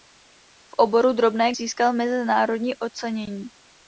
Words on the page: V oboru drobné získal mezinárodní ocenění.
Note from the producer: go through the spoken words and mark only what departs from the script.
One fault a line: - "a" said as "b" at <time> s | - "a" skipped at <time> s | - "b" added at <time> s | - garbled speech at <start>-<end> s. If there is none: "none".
none